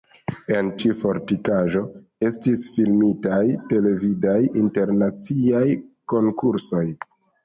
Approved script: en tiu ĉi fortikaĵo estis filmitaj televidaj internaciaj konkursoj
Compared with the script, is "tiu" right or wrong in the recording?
wrong